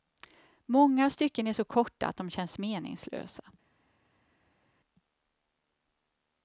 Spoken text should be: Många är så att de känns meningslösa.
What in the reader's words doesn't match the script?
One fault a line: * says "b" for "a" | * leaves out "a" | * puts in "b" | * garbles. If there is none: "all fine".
* puts in "stycken"
* puts in "korta"